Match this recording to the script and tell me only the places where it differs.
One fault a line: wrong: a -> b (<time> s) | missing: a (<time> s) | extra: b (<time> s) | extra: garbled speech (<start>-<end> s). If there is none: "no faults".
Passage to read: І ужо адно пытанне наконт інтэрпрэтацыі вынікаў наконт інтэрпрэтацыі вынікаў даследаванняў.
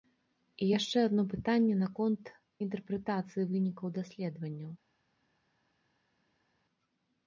wrong: ужо -> яшчэ (0.8 s)
missing: наконт інтэрпрэтацыі вынікаў (4.0 s)